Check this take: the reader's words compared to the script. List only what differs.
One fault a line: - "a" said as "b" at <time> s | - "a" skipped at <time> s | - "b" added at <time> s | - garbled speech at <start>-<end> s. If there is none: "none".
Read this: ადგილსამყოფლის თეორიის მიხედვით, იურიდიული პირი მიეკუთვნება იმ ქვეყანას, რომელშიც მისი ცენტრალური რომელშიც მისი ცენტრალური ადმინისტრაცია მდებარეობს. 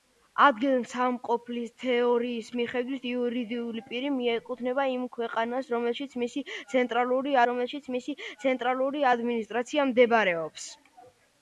none